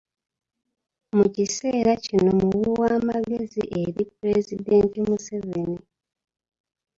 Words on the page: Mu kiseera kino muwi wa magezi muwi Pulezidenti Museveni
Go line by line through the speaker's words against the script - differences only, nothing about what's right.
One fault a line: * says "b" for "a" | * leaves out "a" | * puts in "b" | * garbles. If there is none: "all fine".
* says "eri" for "muwi"